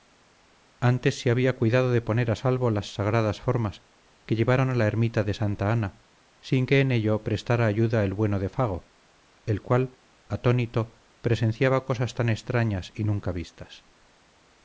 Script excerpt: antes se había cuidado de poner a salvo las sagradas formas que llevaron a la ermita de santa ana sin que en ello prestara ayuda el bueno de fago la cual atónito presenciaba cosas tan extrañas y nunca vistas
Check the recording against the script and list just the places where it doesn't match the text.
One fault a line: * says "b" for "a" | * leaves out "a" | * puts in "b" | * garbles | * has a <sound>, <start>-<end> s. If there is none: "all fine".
* says "el" for "la"